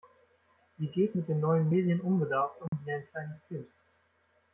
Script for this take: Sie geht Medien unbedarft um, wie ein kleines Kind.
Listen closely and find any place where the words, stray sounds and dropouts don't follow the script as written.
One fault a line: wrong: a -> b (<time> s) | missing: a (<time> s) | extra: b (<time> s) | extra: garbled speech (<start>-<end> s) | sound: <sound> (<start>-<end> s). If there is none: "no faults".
extra: mit den neuen (1.1 s)
sound: dropout (2.7-2.7 s)